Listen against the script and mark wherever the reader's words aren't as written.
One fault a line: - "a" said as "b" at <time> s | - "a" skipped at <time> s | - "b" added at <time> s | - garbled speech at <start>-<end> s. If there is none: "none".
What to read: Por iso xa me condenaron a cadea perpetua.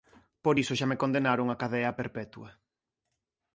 none